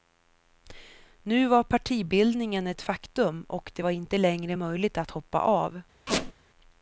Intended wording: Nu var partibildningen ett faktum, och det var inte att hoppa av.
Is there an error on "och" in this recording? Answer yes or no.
no